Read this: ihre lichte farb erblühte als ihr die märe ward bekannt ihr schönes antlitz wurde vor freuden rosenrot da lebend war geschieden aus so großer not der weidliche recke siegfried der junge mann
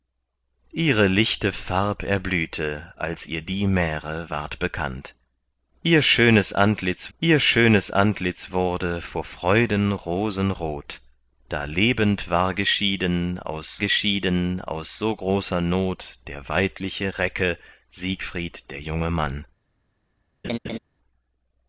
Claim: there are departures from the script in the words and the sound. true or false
true